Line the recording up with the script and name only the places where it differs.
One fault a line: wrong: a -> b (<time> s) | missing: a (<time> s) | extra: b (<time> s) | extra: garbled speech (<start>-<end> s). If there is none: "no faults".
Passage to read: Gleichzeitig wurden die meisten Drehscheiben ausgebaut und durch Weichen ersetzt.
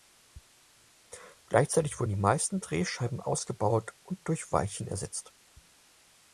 no faults